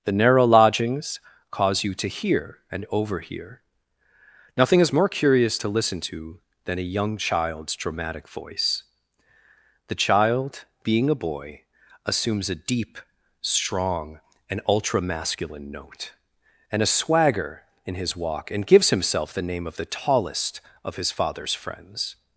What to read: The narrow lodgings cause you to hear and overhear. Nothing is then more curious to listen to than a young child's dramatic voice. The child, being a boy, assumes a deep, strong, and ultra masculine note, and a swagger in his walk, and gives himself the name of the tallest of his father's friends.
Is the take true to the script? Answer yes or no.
no